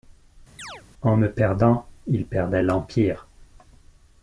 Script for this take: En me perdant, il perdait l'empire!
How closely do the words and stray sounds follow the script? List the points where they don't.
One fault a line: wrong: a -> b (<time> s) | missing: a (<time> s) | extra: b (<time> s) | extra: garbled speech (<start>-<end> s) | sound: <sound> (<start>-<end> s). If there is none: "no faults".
sound: chirp (0.6-0.8 s)